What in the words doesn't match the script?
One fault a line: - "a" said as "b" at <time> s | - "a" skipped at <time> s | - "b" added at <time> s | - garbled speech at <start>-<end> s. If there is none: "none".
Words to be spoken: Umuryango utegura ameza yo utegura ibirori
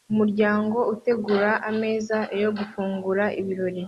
- "utegura" said as "gufungura" at 2.6 s